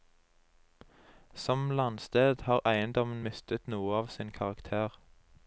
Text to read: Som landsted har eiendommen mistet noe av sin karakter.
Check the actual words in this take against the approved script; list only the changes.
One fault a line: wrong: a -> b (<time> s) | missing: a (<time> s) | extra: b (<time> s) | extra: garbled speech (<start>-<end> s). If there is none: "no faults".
no faults